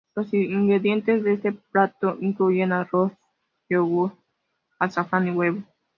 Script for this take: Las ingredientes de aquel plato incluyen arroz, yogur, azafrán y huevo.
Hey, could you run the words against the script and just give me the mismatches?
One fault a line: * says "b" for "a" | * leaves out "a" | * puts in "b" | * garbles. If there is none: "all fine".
* says "Los" for "Las"
* says "este" for "aquel"